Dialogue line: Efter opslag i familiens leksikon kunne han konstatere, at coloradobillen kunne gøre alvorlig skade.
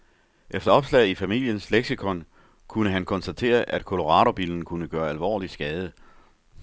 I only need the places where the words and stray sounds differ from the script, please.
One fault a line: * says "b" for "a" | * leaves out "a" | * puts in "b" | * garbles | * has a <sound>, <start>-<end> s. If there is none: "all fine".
all fine